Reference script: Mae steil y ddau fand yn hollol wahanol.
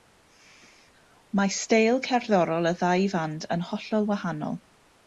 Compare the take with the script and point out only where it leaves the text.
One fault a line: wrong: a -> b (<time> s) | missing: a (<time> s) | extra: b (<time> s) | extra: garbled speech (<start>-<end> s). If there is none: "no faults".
extra: cerddorol (2.1 s)